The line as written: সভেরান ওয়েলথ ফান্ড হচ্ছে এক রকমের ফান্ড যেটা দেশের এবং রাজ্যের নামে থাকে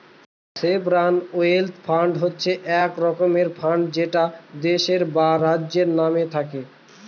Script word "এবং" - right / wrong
wrong